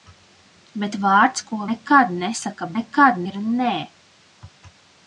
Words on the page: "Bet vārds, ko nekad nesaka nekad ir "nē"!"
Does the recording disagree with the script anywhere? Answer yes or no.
no